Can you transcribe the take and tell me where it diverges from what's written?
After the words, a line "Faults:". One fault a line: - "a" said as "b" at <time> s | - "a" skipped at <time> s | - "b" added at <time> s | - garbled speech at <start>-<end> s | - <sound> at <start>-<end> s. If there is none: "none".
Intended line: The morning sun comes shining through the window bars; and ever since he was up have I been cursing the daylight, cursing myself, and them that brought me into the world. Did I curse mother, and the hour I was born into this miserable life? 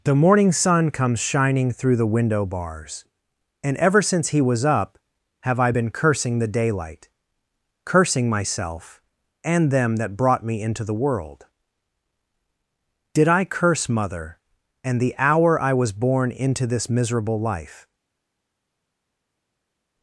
The morning sun comes shining through the window bars; and ever since he was up have I been cursing the daylight, cursing myself, and them that brought me into the world. Did I curse mother, and the hour I was born into this miserable life?
Faults:
none